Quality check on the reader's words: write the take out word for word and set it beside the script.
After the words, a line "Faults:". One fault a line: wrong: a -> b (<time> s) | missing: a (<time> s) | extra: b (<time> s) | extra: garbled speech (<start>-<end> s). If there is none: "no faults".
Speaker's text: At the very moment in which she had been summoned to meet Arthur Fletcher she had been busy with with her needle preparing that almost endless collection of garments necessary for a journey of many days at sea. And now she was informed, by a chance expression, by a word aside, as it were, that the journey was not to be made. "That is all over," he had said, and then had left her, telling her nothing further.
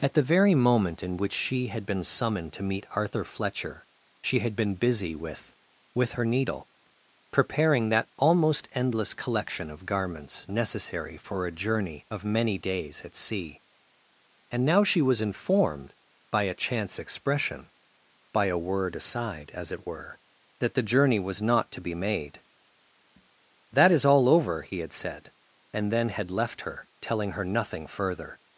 At the very moment in which she had been summoned to meet Arthur Fletcher she had been busy with with her needle preparing that almost endless collection of garments necessary for a journey of many days at sea. And now she was informed, by a chance expression, by a word aside, as it were, that the journey was not to be made. "That is all over," he had said, and then had left her, telling her nothing further.
Faults:
no faults